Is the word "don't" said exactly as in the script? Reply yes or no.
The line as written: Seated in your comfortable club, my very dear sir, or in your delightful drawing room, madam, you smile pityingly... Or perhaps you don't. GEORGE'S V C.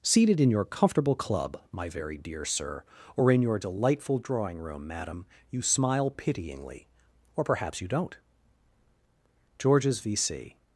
yes